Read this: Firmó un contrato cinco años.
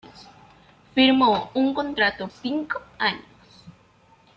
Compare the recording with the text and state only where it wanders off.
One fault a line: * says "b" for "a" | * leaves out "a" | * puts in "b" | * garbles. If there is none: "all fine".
all fine